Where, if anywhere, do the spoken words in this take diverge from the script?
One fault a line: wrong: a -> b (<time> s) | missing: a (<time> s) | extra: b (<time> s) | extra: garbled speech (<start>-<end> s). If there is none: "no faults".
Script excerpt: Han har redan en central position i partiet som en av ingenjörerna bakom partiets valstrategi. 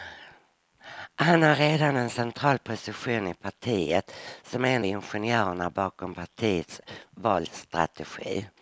missing: av (4.8 s)